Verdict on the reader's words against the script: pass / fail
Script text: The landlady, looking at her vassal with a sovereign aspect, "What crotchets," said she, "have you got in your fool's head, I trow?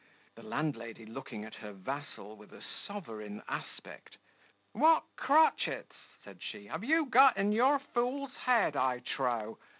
pass